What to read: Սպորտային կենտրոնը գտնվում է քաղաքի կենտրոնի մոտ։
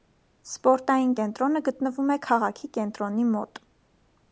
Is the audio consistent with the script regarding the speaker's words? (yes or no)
yes